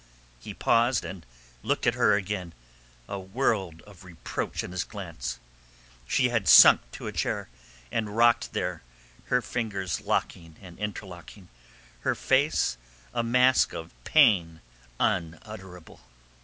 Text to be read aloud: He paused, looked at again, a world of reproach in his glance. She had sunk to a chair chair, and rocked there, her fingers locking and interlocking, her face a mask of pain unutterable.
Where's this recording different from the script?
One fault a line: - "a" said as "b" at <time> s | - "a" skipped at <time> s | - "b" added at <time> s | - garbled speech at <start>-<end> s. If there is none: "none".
- "and" added at 1.0 s
- "her" added at 1.9 s
- "chair" skipped at 7.5 s